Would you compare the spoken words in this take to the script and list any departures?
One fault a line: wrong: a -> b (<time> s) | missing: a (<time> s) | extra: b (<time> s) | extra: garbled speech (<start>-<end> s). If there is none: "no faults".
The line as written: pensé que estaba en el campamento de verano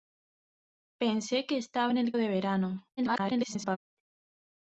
missing: campamento (2.1 s)
extra: garbled speech (3.0-3.8 s)